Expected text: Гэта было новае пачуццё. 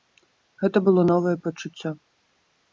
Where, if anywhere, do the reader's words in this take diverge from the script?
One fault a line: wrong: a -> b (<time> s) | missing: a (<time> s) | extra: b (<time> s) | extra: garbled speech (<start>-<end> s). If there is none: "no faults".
no faults